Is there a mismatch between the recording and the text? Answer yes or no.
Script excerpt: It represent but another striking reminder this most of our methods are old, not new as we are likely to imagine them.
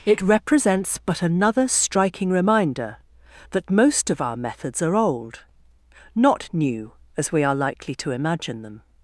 yes